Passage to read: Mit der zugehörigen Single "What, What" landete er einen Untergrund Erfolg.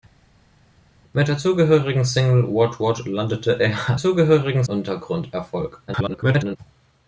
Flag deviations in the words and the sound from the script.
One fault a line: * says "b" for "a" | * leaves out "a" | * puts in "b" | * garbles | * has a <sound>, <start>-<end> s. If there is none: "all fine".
* says "zugehörigen" for "einen"
* garbles